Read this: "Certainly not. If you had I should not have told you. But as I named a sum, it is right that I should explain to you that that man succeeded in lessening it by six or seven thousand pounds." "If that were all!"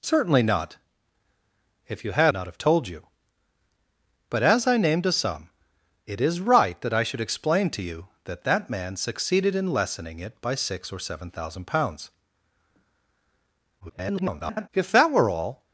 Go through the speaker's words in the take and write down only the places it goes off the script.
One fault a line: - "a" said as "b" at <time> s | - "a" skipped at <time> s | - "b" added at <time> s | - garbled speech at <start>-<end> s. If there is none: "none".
- "I should" skipped at 2.3 s
- garbled speech at 13.8-14.7 s